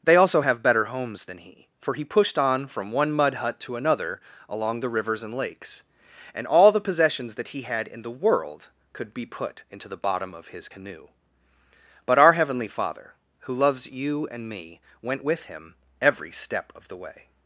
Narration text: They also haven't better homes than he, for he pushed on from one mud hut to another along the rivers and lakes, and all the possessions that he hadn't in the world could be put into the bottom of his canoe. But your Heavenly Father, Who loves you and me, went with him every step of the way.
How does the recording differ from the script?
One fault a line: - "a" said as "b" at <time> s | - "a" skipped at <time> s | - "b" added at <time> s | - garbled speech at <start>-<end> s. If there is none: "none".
- "haven't" said as "have" at 0.4 s
- "hadn't" said as "had" at 7.6 s
- "your" said as "our" at 12.2 s